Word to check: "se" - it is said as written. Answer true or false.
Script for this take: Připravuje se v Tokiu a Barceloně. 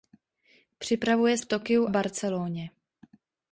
false